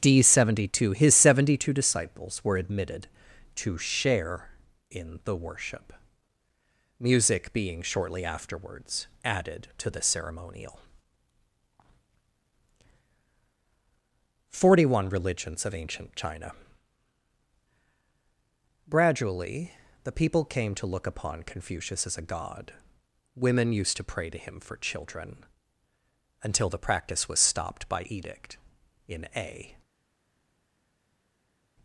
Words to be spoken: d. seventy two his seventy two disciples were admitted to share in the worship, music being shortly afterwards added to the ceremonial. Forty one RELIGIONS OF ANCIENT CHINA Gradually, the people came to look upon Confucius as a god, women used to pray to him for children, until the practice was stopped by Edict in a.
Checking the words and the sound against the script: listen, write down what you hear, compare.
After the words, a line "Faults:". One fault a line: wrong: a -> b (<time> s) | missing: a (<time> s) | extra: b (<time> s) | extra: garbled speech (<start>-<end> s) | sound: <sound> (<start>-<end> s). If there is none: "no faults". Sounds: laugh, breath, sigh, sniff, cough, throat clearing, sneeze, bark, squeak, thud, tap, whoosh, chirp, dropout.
d. seventy two his seventy two disciples were admitted to share in the worship, music being shortly afterwards added to the ceremonial. Forty one RELIGIONS OF ANCIENT CHINA Gradually, the people came to look upon Confucius as a god, women used to pray to him for children, until the practice was stopped by Edict in a.
Faults:
no faults